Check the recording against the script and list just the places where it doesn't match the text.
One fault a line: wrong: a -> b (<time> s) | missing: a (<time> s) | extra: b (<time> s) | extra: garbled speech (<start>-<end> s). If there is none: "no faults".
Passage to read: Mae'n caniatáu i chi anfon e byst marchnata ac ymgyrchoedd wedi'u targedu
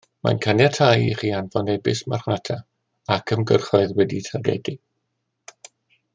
no faults